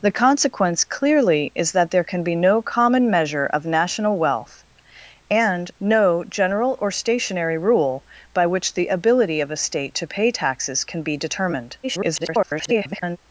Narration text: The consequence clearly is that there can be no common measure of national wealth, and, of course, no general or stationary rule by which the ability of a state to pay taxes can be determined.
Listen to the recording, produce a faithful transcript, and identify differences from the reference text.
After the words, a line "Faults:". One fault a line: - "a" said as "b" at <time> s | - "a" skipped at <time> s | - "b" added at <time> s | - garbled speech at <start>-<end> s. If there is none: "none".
The consequence clearly is that there can be no common measure of national wealth, and, no general or stationary rule by which the ability of a state to pay taxes can be determined. [garbled]
Faults:
- "of course" skipped at 5.7 s
- garbled speech at 11.8-13.2 s